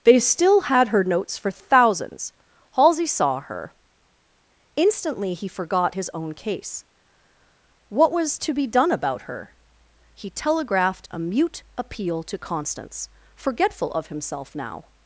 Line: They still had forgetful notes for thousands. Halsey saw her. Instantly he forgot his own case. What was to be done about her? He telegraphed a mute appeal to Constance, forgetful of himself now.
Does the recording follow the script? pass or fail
fail